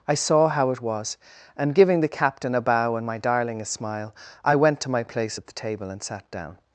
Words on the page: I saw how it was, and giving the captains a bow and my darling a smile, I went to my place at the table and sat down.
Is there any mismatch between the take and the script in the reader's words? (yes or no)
yes